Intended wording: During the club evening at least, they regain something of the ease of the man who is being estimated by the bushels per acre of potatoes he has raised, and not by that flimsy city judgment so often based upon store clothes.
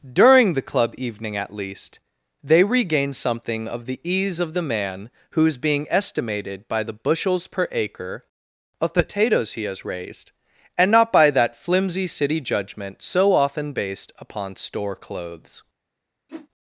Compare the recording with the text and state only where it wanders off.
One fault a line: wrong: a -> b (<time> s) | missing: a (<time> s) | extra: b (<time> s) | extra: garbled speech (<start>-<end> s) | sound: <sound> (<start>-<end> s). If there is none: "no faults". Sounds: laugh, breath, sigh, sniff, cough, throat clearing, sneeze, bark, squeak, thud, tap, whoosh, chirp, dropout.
sound: whoosh (16.3-16.5 s)